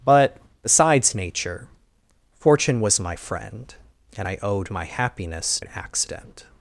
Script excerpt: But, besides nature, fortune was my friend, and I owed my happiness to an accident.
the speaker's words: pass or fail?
fail